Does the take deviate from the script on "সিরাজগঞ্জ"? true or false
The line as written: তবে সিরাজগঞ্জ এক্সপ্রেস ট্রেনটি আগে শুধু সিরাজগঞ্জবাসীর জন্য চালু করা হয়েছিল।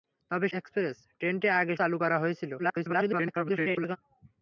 true